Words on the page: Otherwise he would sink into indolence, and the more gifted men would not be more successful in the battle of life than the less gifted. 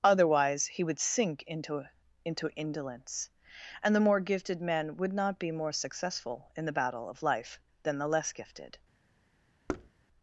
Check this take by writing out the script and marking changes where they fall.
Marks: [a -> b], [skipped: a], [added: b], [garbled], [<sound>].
Otherwise he would sink into [added: into] indolence, and the more gifted men would not be more successful in the battle of life than the less gifted. [thud]